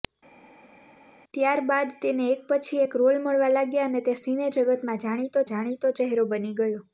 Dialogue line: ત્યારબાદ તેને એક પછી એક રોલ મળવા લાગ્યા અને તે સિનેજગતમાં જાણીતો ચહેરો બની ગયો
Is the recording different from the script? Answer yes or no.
yes